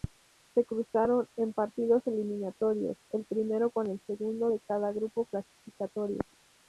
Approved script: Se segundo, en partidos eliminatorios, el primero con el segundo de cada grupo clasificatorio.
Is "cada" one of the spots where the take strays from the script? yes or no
no